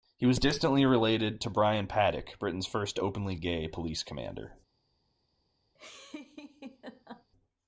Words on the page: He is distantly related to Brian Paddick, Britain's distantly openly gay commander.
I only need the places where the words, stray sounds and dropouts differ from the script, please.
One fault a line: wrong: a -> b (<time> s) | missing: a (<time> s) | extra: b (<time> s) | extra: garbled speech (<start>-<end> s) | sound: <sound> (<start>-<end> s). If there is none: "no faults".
wrong: is -> was (0.2 s)
wrong: distantly -> first (2.7 s)
extra: police (3.7 s)
sound: laugh (5.7-7.3 s)